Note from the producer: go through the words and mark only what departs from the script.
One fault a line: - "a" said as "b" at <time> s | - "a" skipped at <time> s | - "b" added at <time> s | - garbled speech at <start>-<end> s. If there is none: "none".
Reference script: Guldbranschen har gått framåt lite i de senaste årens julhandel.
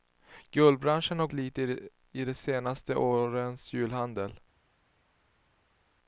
- "gått framåt" skipped at 1.3 s